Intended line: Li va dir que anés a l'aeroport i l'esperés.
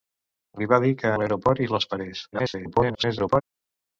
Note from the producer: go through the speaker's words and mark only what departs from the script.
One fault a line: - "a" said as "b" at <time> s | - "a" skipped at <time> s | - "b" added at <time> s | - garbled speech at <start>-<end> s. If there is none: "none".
- "anés" skipped at 1.1 s
- garbled speech at 2.3-3.4 s